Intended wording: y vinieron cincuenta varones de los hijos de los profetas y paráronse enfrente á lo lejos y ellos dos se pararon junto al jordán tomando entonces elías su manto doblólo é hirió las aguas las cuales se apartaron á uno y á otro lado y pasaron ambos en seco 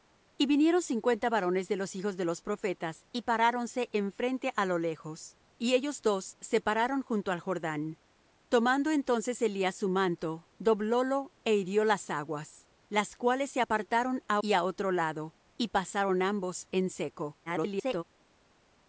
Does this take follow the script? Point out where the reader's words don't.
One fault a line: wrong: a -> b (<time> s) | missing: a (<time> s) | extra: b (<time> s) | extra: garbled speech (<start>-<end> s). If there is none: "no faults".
missing: uno (14.4 s)
extra: garbled speech (17.5-18.0 s)